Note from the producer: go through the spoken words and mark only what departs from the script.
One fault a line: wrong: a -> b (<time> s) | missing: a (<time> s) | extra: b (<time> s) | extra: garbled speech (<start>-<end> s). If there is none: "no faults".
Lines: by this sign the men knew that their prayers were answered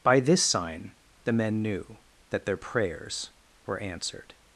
no faults